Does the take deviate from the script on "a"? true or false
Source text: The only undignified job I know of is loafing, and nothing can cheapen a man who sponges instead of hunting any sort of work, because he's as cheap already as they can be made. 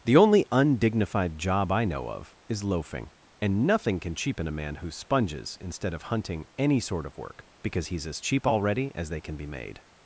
false